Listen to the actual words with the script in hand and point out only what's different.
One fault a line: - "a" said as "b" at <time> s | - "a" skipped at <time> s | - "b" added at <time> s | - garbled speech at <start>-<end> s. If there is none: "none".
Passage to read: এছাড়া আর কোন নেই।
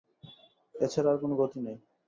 - "গতি" added at 1.4 s